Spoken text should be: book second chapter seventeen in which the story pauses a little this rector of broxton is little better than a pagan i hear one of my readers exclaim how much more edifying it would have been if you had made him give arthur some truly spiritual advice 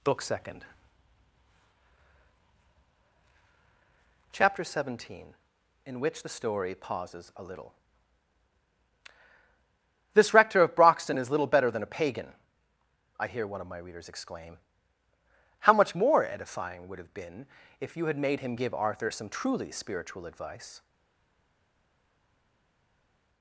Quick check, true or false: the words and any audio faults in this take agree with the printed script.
false